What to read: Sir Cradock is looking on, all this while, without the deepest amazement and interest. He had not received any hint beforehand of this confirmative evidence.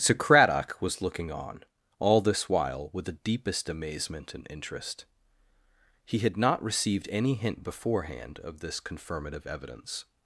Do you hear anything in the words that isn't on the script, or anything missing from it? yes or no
yes